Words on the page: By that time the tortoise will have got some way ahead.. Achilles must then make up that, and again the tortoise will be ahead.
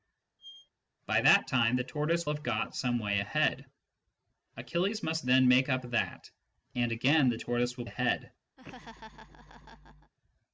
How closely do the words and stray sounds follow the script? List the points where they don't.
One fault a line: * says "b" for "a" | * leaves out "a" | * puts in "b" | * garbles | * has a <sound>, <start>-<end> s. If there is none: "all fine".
* has a squeak, 0.4-0.7 s
* leaves out "will"
* leaves out "be"
* has a laugh, 8.6-10.1 s